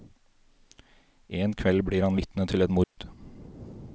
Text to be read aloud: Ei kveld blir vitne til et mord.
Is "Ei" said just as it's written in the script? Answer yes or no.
no